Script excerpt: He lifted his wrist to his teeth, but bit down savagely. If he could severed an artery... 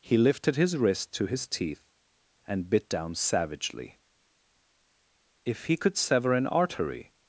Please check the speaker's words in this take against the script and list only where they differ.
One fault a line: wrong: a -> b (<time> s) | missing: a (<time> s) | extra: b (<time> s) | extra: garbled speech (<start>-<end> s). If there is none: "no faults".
wrong: but -> and (2.5 s)
wrong: severed -> sever (6.0 s)